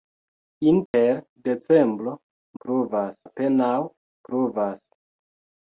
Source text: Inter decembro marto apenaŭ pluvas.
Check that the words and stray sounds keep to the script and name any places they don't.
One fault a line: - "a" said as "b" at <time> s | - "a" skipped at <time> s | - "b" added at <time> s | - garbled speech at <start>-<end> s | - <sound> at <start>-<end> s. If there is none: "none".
- dropout at 0.9-0.9 s
- "marto" said as "pluvas" at 2.6 s